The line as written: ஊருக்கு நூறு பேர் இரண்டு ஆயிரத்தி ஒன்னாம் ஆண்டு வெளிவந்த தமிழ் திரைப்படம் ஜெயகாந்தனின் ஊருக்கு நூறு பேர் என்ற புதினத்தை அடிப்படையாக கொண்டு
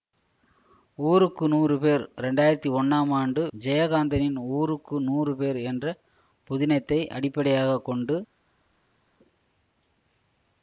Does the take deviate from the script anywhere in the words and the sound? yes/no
yes